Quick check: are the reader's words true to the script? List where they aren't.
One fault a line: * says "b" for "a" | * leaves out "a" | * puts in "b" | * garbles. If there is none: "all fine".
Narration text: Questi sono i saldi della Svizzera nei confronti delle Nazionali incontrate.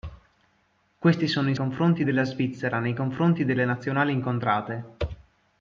* says "confronti" for "saldi"